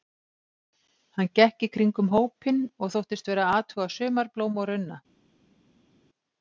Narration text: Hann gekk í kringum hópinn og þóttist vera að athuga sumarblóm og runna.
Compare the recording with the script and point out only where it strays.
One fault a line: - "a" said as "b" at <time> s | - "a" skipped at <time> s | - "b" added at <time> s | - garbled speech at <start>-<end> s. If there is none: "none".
none